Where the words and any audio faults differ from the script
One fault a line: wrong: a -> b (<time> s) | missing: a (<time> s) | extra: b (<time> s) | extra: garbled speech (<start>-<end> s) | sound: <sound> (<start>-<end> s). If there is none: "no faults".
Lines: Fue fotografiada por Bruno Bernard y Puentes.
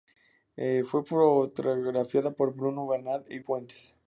no faults